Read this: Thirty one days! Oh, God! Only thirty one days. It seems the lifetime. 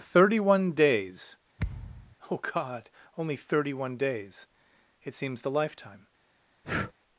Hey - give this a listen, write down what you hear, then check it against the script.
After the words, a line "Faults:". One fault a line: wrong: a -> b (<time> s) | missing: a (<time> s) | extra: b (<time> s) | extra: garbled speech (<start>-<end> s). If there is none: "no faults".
Thirty one days! Oh, God! Only thirty one days. It seems the lifetime.
Faults:
no faults